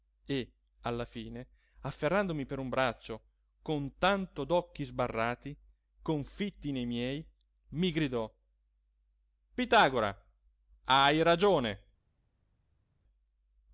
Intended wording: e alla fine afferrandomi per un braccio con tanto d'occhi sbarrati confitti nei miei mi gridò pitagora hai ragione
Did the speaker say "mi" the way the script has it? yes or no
yes